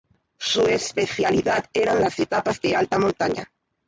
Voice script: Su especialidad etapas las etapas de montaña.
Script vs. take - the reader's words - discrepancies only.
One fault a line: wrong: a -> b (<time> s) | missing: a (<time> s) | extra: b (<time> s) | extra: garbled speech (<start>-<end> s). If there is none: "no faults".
wrong: etapas -> eran (1.7 s)
extra: alta (2.8 s)